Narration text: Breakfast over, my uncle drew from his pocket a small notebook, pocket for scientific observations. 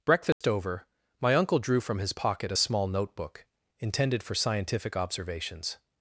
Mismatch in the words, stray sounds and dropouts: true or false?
true